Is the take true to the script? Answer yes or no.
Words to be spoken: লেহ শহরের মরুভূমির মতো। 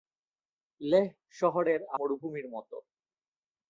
yes